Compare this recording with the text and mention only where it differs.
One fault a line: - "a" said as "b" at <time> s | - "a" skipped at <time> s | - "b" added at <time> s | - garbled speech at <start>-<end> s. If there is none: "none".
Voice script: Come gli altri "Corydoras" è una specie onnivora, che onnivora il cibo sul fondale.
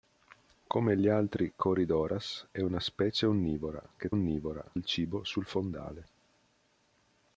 none